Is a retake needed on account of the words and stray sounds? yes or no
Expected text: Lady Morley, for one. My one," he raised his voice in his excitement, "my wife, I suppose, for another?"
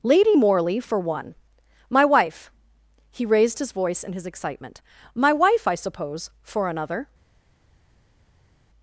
yes